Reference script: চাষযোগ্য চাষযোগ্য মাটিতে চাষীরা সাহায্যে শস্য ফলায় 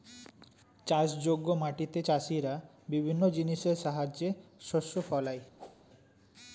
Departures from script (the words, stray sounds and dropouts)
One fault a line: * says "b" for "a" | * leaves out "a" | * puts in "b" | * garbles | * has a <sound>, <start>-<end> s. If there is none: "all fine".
* leaves out "চাষযোগ্য"
* puts in "বিভিন্ন জিনিসের"
* has a whoosh, 5.6-5.8 s